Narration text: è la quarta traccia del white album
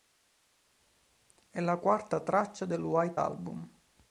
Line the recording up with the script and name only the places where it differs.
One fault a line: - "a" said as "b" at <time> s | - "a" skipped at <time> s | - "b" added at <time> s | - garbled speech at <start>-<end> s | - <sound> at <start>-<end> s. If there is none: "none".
none